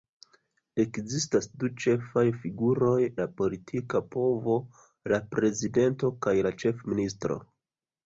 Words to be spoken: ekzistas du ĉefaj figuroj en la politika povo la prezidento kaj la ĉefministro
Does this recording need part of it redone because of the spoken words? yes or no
yes